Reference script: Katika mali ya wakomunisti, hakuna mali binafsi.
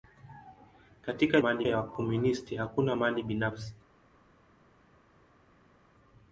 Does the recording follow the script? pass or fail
pass